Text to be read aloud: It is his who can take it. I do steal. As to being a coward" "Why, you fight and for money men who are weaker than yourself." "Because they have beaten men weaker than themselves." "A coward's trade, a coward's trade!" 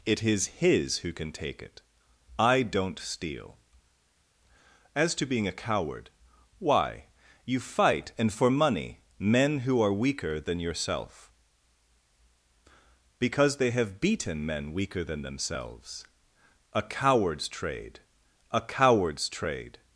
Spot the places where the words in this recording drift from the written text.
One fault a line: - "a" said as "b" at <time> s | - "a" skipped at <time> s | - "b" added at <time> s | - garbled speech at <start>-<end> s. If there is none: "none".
- "do" said as "don't" at 2.6 s